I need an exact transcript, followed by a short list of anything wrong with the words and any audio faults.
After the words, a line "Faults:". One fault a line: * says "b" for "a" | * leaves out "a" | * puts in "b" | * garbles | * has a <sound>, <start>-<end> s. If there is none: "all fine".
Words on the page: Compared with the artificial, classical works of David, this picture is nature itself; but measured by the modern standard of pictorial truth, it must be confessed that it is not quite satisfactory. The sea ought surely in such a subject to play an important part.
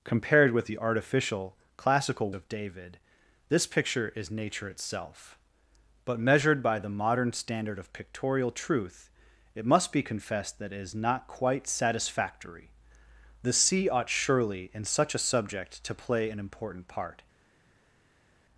Compared with the artificial, classical of David, this picture is nature itself; but measured by the modern standard of pictorial truth, it must be confessed that it is not quite satisfactory. The sea ought surely in such a subject to play an important part.
Faults:
* leaves out "works"